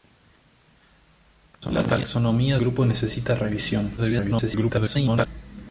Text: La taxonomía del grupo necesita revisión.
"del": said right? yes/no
no